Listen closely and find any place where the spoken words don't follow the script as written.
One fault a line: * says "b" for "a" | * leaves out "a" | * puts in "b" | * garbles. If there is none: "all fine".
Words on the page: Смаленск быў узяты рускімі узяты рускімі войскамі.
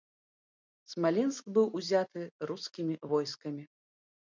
* leaves out "узяты рускімі"